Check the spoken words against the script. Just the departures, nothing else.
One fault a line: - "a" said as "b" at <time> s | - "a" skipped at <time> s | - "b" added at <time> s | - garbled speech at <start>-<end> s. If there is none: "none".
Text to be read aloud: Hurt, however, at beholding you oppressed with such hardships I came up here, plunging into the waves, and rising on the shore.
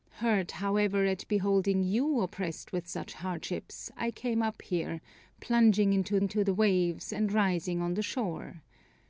- "into" added at 6.2 s